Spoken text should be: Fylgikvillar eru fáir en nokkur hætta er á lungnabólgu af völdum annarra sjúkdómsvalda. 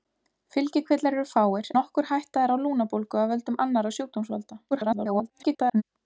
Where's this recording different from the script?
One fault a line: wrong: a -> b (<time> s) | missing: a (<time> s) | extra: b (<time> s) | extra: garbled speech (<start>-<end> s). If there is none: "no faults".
missing: en (1.7 s)
extra: garbled speech (4.7-5.8 s)